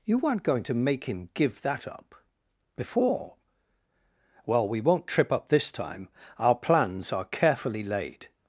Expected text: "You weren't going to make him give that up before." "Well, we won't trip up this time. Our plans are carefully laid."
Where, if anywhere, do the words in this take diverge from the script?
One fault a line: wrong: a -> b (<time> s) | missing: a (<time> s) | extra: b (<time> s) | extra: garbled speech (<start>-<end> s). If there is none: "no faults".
no faults